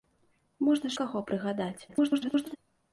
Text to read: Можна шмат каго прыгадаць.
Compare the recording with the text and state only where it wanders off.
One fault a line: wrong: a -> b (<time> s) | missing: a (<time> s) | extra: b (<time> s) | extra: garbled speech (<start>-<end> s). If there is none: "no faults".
missing: шмат (0.9 s)
extra: garbled speech (1.9-2.6 s)